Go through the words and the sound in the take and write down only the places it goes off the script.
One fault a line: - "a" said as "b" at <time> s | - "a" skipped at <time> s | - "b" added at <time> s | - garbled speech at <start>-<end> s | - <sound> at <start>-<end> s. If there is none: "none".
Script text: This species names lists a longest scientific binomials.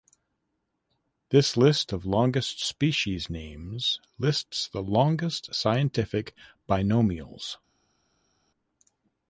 - "list of longest" added at 1.6 s
- "a" said as "the" at 4.7 s